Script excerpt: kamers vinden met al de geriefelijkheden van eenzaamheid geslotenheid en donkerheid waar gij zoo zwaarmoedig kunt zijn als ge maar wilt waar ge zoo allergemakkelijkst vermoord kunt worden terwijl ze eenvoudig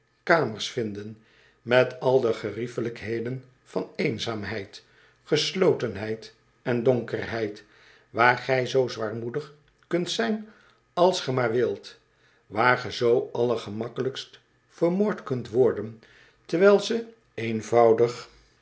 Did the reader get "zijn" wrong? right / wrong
right